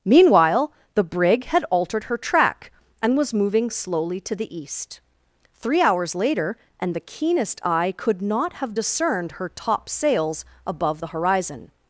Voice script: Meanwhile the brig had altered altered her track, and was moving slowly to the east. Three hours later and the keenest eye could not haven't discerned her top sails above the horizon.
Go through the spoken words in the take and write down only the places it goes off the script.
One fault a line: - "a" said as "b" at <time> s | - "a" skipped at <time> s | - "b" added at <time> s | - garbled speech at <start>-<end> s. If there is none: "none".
- "altered" skipped at 2.0 s
- "haven't" said as "have" at 8.5 s